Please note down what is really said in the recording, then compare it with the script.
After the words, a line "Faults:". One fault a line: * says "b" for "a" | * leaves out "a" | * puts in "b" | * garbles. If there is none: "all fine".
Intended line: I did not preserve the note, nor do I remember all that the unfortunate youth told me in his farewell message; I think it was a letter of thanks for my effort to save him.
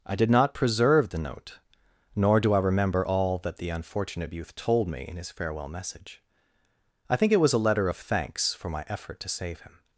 I did not preserve the note, nor do I remember all that the unfortunate youth told me in his farewell message; I think it was a letter of thanks for my effort to save him.
Faults:
all fine